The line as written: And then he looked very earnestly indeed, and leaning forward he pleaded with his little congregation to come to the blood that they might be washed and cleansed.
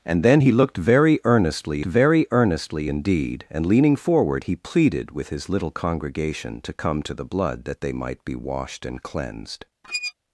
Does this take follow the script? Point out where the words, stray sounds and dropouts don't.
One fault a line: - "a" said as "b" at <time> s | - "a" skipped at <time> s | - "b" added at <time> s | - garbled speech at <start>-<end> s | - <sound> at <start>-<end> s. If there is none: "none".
- "very earnestly" added at 1.8 s
- squeak at 9.8-10.1 s